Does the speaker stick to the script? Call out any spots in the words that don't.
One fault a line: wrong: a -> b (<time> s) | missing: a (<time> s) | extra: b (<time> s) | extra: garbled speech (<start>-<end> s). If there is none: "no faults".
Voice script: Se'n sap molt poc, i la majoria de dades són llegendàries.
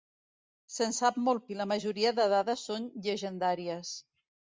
missing: poc (1.4 s)